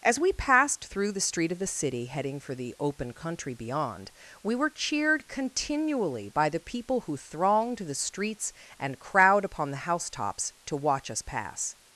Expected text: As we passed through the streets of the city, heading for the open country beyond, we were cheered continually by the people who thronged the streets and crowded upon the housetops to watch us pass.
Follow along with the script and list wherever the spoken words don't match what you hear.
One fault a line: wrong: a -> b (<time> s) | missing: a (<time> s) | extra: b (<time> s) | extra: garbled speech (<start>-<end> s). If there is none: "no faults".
wrong: streets -> street (1.2 s)
wrong: crowded -> crowd (9.0 s)